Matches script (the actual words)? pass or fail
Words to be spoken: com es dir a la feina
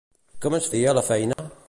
pass